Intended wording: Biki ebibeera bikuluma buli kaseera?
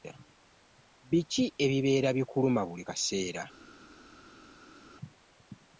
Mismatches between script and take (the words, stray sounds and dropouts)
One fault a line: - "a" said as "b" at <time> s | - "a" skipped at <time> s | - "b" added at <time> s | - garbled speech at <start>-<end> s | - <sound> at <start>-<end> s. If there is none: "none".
none